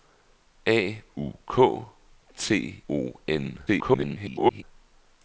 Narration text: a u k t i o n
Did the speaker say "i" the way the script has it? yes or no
no